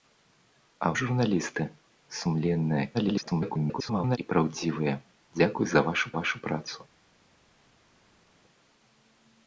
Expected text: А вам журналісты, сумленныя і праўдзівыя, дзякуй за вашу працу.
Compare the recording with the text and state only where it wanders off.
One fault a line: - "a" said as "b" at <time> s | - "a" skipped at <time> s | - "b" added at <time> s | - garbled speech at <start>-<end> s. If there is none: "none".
- "вам" skipped at 0.9 s
- garbled speech at 2.9-4.2 s
- "вашу" added at 6.2 s